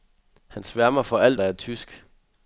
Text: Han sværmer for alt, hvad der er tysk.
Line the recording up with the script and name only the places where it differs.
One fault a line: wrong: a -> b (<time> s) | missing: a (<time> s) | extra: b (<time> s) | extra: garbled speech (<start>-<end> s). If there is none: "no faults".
missing: hvad (1.4 s)